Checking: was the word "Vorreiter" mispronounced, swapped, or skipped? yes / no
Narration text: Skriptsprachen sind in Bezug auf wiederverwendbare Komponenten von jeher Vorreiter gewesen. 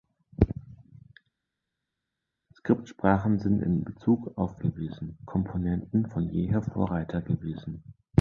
no